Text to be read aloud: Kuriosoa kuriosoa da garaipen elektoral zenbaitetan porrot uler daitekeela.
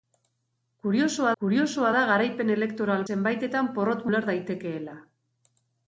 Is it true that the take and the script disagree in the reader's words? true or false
false